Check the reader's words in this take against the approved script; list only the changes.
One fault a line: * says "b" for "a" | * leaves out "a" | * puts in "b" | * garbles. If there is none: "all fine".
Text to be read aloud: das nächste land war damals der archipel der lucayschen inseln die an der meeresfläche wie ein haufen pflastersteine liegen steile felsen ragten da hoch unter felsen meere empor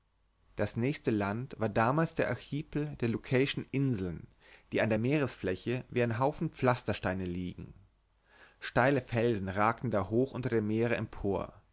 * says "dem" for "felsen"